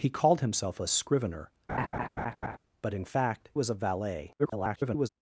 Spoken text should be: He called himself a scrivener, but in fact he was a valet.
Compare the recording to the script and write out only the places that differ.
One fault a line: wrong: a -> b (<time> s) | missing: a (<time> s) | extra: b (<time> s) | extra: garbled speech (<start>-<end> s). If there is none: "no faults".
missing: he (3.5 s)
extra: garbled speech (4.4-5.1 s)